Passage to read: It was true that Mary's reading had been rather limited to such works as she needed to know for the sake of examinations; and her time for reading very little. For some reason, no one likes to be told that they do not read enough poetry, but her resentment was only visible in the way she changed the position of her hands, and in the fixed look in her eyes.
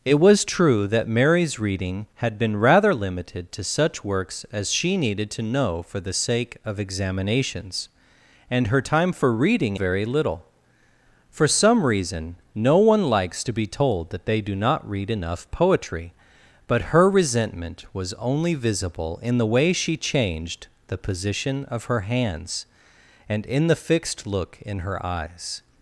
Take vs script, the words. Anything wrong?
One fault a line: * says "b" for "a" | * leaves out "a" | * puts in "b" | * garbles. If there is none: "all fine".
all fine